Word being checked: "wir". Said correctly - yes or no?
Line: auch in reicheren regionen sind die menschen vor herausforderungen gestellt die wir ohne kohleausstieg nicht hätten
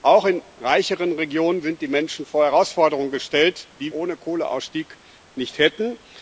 no